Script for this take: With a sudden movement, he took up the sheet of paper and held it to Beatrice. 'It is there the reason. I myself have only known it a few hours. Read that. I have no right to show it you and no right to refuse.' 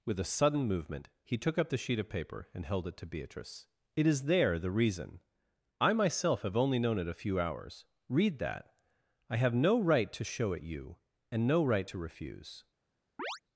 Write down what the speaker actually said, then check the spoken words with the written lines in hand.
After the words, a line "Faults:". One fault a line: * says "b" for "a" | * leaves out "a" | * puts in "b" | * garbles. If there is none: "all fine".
With a sudden movement, he took up the sheet of paper and held it to Beatrice. 'It is there the reason. I myself have only known it a few hours. Read that. I have no right to show it you and no right to refuse.'
Faults:
all fine